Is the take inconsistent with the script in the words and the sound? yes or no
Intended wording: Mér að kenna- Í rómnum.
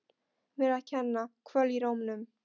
yes